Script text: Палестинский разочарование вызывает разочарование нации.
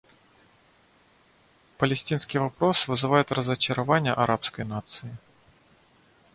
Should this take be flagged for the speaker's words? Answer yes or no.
yes